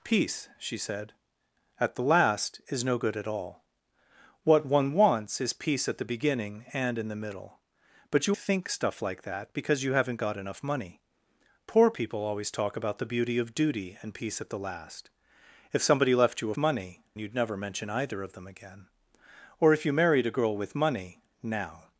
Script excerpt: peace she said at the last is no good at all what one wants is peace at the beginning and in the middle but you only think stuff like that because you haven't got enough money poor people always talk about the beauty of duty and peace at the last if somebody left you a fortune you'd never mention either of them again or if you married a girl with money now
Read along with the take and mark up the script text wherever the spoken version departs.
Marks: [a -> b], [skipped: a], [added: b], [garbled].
peace she said at the last is no good at all what one wants is peace at the beginning and in the middle but you [skipped: only] think stuff like that because you haven't got enough money poor people always talk about the beauty of duty and peace at the last if somebody left you a [fortune -> money] you'd never mention either of them again or if you married a girl with money now